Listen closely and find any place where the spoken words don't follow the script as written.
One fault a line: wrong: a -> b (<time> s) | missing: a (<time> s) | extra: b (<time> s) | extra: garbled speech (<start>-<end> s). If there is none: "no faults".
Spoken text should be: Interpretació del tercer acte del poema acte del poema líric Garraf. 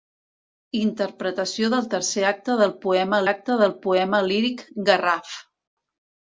no faults